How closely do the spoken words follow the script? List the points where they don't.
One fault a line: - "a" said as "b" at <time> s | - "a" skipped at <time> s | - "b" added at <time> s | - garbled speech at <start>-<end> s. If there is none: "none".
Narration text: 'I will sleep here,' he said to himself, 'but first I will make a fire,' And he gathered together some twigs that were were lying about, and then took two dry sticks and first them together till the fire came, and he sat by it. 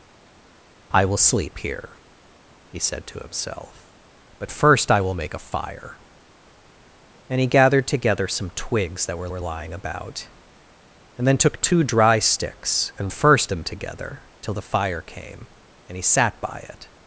none